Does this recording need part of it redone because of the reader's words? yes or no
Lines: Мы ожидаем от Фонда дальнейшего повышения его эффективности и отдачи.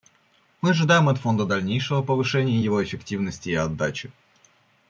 no